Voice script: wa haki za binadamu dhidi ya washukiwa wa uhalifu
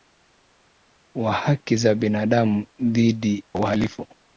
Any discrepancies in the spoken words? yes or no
yes